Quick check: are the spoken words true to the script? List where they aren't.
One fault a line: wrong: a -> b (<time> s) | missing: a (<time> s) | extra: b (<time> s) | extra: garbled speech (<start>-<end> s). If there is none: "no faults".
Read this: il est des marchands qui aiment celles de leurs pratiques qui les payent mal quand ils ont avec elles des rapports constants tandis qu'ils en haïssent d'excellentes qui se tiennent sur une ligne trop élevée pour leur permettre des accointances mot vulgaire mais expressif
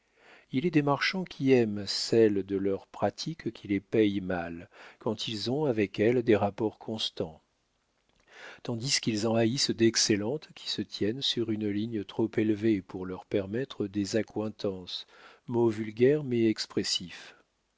no faults